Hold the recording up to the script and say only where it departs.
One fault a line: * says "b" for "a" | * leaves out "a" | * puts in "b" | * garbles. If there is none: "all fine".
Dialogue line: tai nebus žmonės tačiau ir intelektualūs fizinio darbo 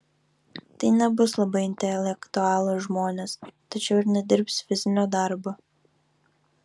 * puts in "labai intelektualūs"
* says "nedirbs" for "intelektualūs"